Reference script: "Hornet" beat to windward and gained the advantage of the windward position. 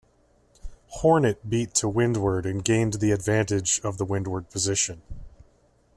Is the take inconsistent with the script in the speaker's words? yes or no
no